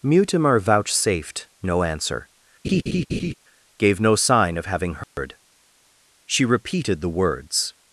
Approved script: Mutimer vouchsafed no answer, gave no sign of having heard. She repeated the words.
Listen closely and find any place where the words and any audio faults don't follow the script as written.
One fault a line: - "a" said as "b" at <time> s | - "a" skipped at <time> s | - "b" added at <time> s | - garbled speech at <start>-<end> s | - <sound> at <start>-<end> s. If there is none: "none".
- laugh at 2.6-3.3 s
- dropout at 5.0-5.2 s